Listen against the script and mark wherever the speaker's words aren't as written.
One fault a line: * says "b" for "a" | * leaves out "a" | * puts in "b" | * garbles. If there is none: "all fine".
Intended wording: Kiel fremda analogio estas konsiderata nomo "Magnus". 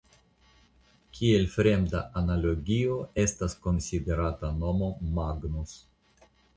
all fine